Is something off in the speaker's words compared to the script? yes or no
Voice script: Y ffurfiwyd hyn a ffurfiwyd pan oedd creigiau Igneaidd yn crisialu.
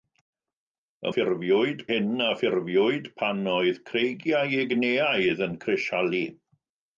no